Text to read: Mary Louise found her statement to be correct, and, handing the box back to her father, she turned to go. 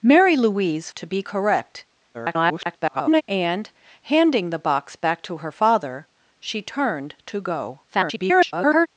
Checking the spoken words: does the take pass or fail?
fail